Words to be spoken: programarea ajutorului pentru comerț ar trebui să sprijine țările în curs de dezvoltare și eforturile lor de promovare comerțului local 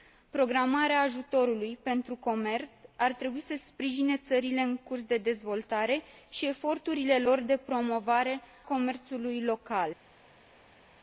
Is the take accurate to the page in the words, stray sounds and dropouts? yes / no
yes